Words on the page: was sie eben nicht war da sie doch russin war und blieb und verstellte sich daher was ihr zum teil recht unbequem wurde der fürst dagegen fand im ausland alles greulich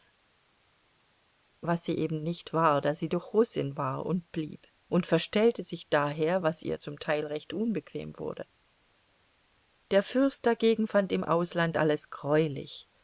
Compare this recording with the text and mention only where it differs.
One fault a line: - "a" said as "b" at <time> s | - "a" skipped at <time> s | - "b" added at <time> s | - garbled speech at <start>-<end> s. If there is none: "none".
none